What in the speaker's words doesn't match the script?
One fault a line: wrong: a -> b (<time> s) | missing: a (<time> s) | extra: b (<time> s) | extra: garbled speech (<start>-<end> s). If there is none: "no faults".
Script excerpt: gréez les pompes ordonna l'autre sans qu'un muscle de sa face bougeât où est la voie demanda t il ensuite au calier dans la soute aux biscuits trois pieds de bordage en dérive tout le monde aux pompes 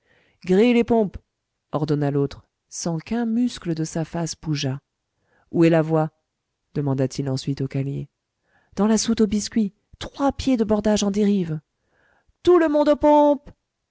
no faults